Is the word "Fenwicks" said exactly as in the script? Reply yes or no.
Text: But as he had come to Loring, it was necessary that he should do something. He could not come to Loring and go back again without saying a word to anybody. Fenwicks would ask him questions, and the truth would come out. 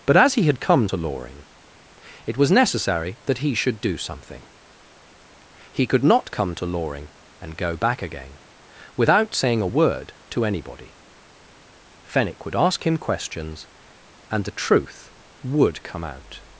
no